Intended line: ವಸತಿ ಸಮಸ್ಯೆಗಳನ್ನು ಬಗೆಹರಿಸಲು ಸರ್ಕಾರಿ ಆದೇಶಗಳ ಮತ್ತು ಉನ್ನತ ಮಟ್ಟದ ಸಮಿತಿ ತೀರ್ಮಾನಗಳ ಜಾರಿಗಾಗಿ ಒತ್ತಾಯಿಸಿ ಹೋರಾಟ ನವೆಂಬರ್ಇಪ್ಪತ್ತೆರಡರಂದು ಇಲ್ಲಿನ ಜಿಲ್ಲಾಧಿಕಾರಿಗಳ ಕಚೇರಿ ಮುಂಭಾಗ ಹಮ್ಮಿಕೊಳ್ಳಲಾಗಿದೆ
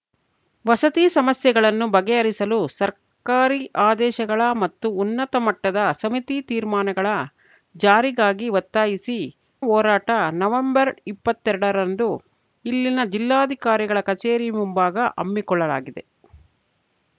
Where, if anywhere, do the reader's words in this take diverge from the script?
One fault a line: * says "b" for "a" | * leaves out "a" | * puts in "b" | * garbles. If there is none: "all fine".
all fine